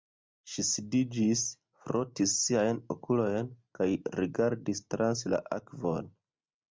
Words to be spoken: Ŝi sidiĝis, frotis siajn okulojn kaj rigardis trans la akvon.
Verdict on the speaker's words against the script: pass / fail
pass